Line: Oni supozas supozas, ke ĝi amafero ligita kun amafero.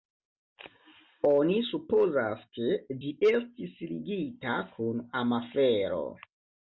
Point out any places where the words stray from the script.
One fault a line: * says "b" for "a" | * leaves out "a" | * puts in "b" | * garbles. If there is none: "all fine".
* leaves out "supozas"
* says "estis" for "amafero"